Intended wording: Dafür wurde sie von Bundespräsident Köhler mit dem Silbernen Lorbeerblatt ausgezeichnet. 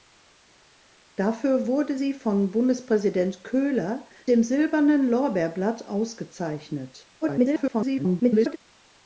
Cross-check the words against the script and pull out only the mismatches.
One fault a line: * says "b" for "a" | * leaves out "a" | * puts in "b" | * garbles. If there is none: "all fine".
* leaves out "mit"
* garbles